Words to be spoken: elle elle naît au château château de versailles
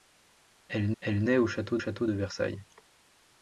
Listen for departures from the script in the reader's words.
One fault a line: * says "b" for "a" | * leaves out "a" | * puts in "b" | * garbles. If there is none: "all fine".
all fine